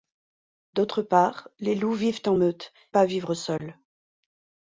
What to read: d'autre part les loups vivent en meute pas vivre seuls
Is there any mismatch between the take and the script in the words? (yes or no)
no